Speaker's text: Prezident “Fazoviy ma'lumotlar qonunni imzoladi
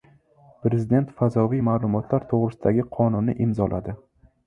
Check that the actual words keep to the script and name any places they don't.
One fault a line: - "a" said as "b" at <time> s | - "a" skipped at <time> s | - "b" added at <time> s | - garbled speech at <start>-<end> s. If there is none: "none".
- "to‘g‘risida”gi" added at 2.3 s